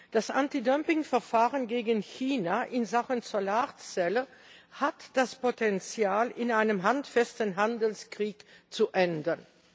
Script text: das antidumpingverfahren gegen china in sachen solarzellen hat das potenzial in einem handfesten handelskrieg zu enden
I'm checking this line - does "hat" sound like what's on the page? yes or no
yes